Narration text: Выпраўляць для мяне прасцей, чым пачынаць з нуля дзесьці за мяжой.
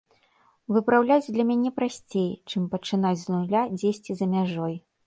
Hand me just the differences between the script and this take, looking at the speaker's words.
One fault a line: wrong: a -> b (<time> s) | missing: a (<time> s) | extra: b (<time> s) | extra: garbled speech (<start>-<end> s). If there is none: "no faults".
no faults